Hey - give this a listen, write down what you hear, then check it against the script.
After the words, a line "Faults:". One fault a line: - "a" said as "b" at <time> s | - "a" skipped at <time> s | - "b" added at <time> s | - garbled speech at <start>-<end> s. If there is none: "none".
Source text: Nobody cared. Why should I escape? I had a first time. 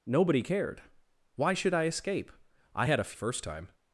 Nobody cared. Why should I escape? I had a first time.
Faults:
none